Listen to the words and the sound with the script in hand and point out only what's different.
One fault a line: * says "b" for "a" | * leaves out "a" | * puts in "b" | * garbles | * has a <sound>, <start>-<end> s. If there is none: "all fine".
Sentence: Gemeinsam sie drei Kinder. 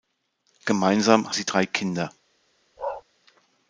* has a bark, 2.8-3.0 s